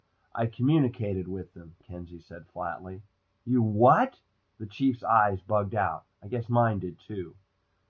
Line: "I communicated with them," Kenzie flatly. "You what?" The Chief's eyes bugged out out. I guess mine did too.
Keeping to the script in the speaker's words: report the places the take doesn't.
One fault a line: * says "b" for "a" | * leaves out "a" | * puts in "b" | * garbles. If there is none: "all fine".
* puts in "said"
* leaves out "out"